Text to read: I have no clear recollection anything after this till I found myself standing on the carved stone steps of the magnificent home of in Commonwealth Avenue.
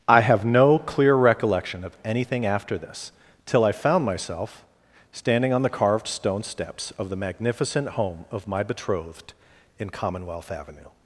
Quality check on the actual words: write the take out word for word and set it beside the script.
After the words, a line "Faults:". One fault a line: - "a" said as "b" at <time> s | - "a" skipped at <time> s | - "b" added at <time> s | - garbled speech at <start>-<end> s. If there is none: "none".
I have no clear recollection of anything after this till I found myself standing on the carved stone steps of the magnificent home of my betrothed in Commonwealth Avenue.
Faults:
- "of" added at 1.8 s
- "my betrothed" added at 8.5 s